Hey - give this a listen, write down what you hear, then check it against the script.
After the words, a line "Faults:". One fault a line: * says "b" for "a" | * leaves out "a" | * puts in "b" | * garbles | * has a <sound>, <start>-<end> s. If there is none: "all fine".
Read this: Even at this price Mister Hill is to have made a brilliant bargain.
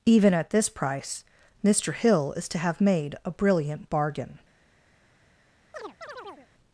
Even at this price Mister Hill is to have made a brilliant bargain.
Faults:
* has a chirp, 5.7-6.5 s